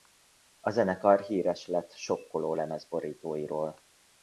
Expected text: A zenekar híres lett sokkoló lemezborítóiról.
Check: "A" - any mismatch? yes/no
no